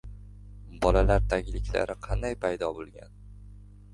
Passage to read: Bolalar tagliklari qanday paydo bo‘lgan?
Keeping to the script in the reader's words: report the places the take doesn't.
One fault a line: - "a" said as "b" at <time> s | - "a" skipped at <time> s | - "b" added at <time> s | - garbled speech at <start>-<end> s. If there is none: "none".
none